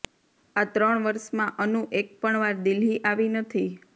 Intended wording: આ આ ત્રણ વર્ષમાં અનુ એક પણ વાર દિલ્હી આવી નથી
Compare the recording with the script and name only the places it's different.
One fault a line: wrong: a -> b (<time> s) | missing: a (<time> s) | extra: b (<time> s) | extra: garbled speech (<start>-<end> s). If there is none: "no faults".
missing: આ (0.7 s)